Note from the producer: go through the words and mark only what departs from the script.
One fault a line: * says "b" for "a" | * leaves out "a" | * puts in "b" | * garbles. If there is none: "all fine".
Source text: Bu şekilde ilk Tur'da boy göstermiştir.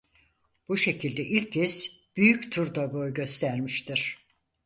* puts in "kez Büyük"